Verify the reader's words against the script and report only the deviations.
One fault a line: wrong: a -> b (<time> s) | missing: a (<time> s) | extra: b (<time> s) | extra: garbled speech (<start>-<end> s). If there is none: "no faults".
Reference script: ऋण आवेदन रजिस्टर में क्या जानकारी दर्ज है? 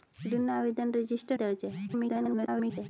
missing: में क्या जानकारी (1.4 s)
extra: garbled speech (1.9-2.9 s)